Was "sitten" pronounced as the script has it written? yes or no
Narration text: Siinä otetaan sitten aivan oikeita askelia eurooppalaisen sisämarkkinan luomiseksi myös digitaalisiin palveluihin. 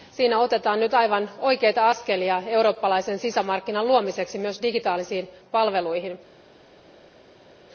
no